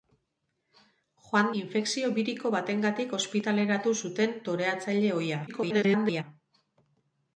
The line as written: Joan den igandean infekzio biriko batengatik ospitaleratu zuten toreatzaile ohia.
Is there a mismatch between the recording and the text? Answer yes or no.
yes